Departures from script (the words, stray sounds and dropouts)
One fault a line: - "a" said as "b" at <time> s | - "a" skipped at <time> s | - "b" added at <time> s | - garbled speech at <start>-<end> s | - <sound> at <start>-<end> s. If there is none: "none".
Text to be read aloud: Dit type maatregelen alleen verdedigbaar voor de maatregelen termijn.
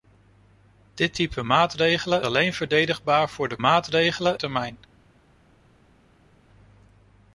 none